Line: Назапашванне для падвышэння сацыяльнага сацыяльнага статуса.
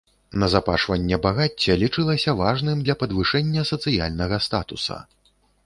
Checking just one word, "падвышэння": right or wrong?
right